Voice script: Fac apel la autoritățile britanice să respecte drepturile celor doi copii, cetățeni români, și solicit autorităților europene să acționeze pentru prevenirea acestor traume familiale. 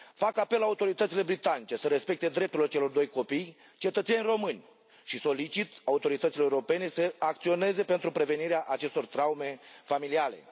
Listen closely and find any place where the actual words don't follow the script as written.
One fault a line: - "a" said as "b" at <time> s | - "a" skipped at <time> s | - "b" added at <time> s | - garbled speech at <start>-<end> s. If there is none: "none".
none